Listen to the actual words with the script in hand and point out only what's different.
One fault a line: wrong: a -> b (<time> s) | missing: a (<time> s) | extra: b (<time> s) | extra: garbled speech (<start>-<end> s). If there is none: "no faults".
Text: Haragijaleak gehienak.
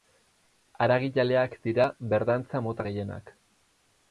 extra: dira berdantza mota (1.7 s)